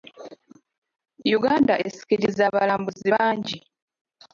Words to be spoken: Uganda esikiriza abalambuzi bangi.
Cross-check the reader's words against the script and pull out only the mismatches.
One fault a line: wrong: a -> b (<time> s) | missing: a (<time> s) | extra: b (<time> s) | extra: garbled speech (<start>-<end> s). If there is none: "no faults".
no faults